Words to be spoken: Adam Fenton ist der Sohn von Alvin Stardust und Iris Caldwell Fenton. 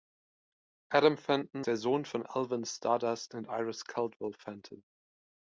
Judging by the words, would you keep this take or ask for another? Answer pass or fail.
fail